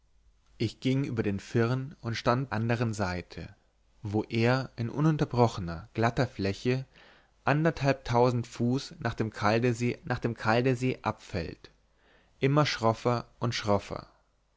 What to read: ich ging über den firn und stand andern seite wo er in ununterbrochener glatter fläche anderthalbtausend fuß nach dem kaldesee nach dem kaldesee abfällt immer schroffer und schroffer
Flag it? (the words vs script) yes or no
no